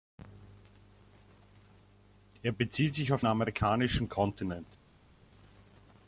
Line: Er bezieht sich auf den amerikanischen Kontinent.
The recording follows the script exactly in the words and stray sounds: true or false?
false